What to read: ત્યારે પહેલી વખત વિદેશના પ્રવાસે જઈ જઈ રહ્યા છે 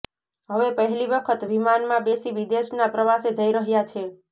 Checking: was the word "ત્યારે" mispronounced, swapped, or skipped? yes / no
yes